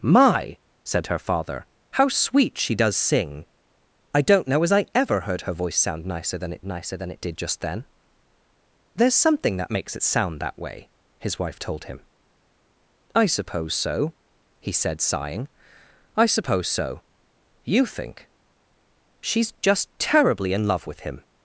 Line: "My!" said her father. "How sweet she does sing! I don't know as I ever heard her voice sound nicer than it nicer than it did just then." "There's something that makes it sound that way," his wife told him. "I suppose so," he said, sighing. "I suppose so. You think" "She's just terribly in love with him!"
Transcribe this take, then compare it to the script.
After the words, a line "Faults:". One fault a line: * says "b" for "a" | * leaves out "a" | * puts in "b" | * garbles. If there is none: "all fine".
"My!" said her father. "How sweet she does sing! I don't know as I ever heard her voice sound nicer than it nicer than it did just then." "There's something that makes it sound that way," his wife told him. "I suppose so," he said, sighing. "I suppose so. You think" "She's just terribly in love with him!"
Faults:
all fine